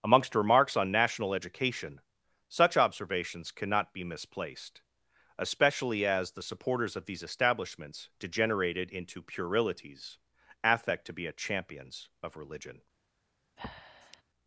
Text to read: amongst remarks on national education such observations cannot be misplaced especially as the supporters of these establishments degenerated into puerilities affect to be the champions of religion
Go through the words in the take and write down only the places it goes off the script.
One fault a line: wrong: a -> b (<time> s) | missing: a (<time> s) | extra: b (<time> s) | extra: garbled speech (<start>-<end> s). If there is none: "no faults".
wrong: the -> a (11.3 s)